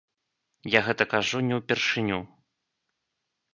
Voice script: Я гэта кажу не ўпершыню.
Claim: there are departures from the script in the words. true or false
false